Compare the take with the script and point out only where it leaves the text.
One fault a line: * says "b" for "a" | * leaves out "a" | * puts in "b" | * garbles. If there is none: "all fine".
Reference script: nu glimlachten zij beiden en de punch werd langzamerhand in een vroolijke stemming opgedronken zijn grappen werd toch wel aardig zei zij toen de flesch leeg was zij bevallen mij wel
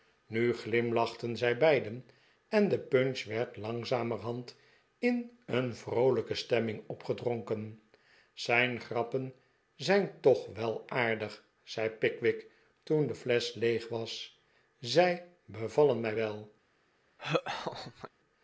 * says "zijn" for "werd"
* says "pickwick" for "zij"